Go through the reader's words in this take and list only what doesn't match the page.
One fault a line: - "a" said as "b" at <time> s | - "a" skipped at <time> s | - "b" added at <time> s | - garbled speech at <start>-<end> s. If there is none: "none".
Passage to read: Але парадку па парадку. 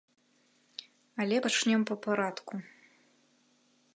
- "парадку" said as "пачнём" at 1.5 s